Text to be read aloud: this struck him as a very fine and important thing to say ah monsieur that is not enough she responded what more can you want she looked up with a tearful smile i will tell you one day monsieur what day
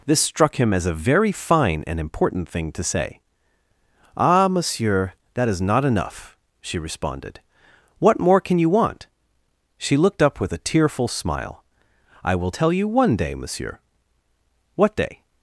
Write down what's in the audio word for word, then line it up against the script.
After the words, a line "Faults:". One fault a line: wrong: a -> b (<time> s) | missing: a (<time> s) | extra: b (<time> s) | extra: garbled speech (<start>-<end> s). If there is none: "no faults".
this struck him as a very fine and important thing to say ah monsieur that is not enough she responded what more can you want she looked up with a tearful smile i will tell you one day monsieur what day
Faults:
no faults